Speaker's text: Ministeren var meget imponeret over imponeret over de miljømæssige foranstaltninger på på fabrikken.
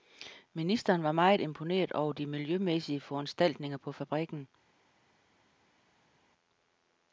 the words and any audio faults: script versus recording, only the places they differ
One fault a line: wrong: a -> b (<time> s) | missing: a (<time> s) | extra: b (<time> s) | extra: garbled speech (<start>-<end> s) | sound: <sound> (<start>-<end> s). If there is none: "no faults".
missing: imponeret over (2.1 s)
missing: på (3.9 s)